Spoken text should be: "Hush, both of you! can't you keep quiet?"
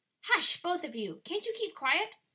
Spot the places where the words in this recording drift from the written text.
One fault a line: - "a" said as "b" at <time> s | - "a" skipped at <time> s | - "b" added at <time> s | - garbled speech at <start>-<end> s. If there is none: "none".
none